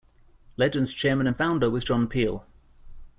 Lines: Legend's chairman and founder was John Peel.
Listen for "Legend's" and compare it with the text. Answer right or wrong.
right